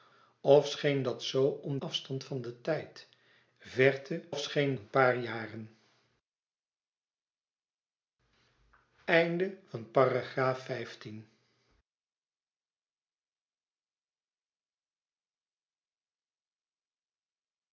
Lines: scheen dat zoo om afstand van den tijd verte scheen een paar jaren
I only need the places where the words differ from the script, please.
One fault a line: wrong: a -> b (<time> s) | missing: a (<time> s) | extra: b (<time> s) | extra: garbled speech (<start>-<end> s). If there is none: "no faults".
no faults